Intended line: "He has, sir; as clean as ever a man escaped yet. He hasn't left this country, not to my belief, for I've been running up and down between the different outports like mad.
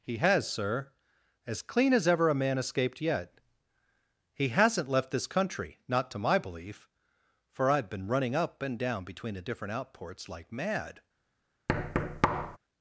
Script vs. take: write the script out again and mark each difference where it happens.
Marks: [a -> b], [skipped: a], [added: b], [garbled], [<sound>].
"He has, sir; as clean as ever a man escaped yet. He hasn't left this country, not to my belief, for I've been running up and down between the different outports like mad. [thud]